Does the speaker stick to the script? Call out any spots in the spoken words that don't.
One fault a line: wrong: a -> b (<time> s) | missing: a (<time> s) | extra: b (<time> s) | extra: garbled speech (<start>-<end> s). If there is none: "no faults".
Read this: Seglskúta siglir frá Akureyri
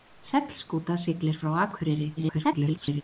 extra: garbled speech (2.2-3.0 s)